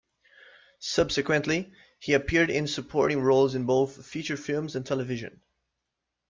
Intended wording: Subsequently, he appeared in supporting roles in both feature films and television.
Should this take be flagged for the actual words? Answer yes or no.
no